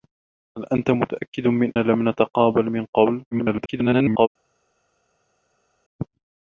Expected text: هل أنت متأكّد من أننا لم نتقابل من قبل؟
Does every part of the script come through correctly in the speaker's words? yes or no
no